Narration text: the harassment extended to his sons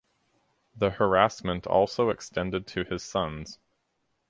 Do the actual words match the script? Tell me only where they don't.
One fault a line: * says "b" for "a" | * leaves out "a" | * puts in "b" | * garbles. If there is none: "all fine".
* puts in "also"